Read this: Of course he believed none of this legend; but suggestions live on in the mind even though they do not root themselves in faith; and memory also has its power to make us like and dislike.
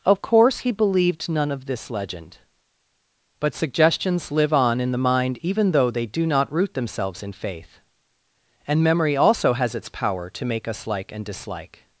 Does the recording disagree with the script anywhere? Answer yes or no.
no